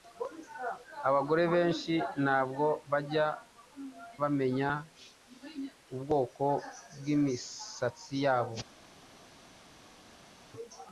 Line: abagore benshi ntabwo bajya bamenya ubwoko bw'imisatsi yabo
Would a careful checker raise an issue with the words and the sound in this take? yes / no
no